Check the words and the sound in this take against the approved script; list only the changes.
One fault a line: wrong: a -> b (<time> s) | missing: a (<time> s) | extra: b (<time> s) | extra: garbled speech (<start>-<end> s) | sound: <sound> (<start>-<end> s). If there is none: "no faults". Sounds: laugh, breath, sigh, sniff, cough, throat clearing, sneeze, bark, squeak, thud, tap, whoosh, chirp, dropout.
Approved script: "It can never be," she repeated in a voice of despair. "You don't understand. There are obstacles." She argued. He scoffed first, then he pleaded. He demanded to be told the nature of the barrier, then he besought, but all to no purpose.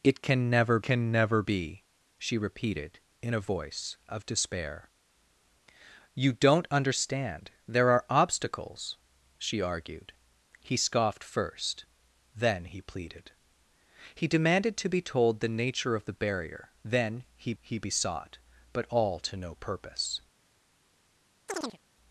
extra: can never (0.8 s)
extra: he (17.6 s)
sound: chirp (21.5-21.8 s)